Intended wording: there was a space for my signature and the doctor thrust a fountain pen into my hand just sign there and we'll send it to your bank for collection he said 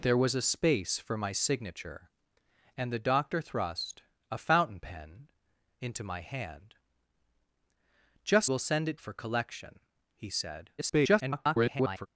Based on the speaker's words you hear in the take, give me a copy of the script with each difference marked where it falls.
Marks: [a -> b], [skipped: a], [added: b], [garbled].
there was a space for my signature and the doctor thrust a fountain pen into my hand just [skipped: sign there and] we'll send it [skipped: to your bank] for collection he said [garbled]